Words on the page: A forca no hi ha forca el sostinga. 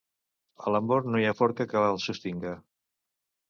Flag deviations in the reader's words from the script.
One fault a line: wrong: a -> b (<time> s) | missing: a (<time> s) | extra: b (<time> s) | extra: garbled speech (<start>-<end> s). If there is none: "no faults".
wrong: forca -> l'amor (0.8 s)
extra: que (1.7 s)